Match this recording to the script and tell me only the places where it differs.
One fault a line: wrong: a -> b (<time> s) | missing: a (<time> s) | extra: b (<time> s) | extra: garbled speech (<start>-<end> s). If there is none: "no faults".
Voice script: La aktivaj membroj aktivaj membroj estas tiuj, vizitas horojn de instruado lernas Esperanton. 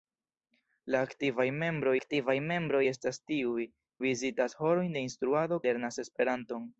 no faults